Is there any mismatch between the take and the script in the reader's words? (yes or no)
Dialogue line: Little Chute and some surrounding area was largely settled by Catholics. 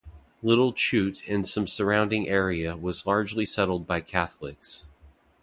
no